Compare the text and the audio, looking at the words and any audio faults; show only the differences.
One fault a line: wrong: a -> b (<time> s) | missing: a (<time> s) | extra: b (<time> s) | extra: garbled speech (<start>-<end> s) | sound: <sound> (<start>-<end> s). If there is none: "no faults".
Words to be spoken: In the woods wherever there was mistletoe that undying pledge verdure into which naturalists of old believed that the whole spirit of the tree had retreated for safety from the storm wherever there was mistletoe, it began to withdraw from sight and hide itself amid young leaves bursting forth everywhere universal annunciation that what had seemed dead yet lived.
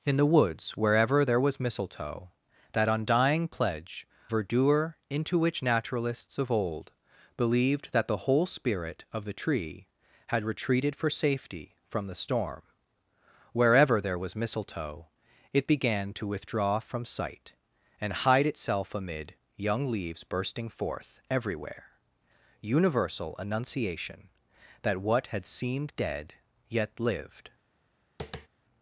sound: tap (28.2-28.5 s)